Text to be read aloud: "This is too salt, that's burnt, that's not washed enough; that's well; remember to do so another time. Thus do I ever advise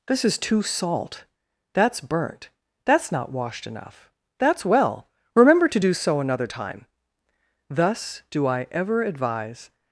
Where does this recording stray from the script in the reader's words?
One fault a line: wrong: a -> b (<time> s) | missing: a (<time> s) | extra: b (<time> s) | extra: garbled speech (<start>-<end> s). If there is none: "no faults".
no faults